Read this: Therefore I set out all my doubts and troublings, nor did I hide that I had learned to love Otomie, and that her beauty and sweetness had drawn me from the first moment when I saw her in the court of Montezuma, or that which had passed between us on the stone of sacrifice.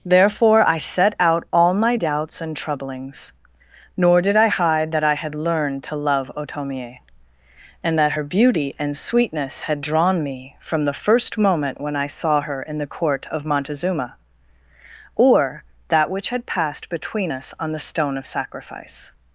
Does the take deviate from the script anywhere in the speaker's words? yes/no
no